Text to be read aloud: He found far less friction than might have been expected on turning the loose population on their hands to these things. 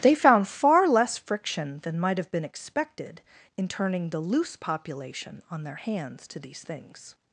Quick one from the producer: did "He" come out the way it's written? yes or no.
no